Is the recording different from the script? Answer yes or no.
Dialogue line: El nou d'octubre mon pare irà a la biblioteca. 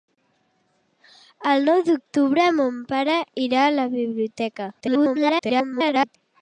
yes